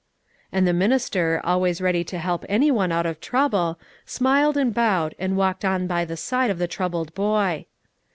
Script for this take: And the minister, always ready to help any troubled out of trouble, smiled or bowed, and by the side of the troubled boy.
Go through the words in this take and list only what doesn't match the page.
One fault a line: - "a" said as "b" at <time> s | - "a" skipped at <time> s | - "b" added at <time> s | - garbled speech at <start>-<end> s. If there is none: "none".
- "troubled" said as "one" at 2.7 s
- "or" said as "and" at 4.6 s
- "walked on" added at 5.4 s